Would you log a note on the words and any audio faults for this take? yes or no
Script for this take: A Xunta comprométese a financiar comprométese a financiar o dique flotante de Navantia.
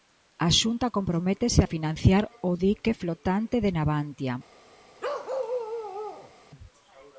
yes